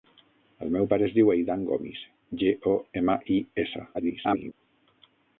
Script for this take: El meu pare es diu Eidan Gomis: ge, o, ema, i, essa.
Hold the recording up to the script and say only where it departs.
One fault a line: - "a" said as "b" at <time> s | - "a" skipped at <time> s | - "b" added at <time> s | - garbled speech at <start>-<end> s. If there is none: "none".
- garbled speech at 3.9-4.5 s